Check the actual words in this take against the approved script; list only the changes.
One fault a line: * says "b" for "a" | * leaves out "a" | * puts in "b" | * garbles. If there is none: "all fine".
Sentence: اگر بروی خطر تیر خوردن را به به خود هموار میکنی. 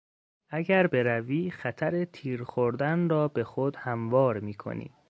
* leaves out "به"